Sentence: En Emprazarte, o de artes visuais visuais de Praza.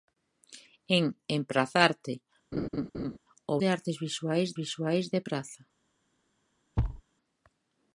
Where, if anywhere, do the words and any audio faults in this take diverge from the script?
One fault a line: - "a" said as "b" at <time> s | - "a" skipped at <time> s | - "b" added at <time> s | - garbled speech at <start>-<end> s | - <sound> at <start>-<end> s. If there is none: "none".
- laugh at 2.5-3.2 s
- thud at 6.8-7.0 s